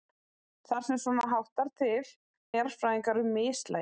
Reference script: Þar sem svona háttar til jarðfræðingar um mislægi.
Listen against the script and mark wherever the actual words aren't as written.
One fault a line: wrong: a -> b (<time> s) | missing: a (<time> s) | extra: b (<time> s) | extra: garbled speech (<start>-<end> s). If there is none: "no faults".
no faults